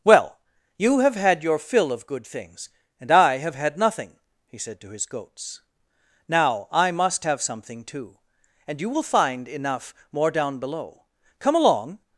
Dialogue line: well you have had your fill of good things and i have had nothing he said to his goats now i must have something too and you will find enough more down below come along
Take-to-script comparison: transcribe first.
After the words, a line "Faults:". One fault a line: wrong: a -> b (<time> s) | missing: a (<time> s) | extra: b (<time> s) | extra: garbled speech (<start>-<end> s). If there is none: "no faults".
well you have had your fill of good things and i have had nothing he said to his goats now i must have something too and you will find enough more down below come along
Faults:
no faults